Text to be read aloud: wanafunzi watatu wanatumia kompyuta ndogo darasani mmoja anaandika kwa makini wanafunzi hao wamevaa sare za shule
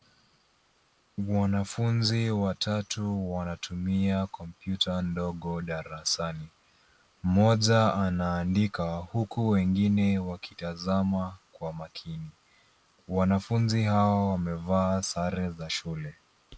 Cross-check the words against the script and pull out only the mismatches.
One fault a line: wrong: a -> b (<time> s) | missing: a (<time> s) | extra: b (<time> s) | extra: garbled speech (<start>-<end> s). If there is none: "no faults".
extra: huku wengine wakitazama (8.9 s)